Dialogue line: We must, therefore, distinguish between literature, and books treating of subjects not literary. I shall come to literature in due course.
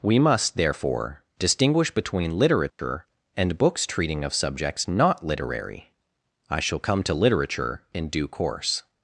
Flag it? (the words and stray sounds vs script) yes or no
yes